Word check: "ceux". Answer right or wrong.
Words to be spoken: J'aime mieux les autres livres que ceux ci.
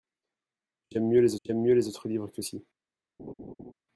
wrong